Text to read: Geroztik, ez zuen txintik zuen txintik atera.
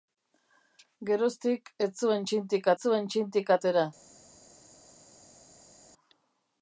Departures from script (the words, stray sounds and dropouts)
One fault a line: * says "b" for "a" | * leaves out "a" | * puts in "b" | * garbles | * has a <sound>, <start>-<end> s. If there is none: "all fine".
all fine